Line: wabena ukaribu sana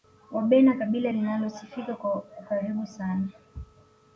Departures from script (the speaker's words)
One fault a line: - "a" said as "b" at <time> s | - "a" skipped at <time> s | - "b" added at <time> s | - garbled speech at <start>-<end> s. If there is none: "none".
- "kabila linalosifika kwa" added at 0.7 s